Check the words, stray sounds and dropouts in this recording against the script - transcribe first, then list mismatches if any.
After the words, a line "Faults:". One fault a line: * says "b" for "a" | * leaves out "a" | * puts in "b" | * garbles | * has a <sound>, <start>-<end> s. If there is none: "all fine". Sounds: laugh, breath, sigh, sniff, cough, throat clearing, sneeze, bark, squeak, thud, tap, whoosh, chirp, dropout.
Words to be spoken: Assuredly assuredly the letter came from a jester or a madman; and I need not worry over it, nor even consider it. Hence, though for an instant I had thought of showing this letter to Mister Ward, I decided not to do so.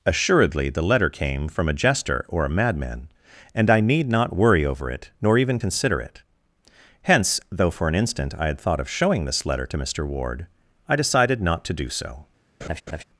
Assuredly the letter came from a jester or a madman; and I need not worry over it, nor even consider it. Hence, though for an instant I had thought of showing this letter to Mister Ward, I decided not to do so.
Faults:
* leaves out "assuredly"
* has a laugh, 12.6-13.0 s